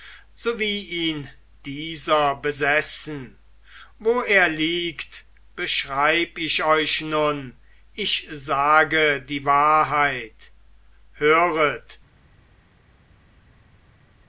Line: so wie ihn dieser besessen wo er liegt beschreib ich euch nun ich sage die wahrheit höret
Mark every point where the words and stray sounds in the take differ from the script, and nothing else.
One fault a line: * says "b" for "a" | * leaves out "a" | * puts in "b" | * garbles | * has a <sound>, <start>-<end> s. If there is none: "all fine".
all fine